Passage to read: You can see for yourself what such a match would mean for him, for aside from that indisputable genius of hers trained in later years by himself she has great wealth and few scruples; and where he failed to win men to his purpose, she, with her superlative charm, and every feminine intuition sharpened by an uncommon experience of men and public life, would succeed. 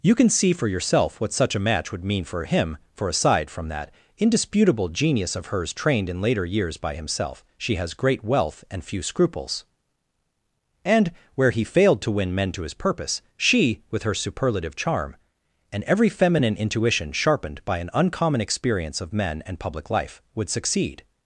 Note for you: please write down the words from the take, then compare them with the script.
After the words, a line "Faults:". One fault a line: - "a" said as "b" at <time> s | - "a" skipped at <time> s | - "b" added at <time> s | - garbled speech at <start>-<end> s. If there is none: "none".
You can see for yourself what such a match would mean for him, for aside from that indisputable genius of hers trained in later years by himself she has great wealth and few scruples; and where he failed to win men to his purpose, she, with her superlative charm, and every feminine intuition sharpened by an uncommon experience of men and public life, would succeed.
Faults:
none